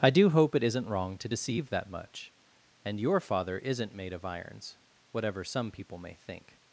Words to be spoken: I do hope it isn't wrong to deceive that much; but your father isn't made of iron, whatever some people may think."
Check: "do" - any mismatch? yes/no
no